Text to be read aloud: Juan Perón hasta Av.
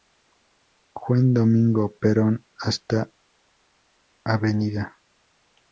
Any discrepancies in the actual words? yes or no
yes